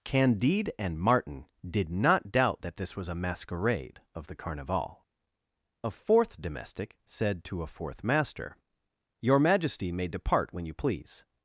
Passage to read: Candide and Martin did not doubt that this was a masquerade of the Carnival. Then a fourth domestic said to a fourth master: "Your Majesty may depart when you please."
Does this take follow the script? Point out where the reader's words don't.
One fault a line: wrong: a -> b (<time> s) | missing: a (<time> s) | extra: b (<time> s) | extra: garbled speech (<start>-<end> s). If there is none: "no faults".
missing: Then (5.0 s)